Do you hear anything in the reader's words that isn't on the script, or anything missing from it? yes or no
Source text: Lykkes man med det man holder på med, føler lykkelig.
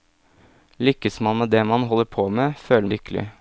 no